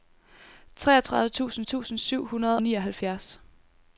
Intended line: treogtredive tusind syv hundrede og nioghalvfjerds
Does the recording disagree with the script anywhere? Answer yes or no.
yes